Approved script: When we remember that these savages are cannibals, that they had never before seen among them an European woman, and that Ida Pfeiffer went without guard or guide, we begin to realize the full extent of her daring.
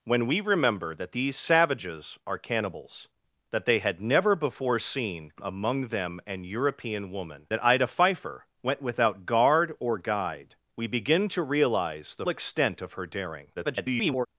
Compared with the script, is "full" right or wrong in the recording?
wrong